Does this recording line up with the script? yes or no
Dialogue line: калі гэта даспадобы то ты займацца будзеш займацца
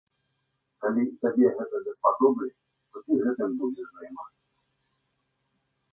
no